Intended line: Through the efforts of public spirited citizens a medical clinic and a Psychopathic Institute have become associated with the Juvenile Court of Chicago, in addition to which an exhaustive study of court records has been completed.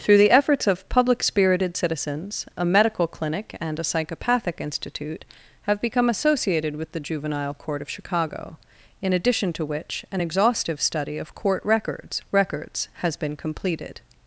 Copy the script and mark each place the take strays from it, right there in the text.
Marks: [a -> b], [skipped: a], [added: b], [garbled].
Through the efforts of public spirited citizens a medical clinic and a Psychopathic Institute have become associated with the Juvenile Court of Chicago, in addition to which an exhaustive study of court records [added: records] has been completed.